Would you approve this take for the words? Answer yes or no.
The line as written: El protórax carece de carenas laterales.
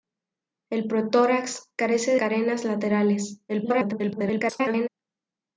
no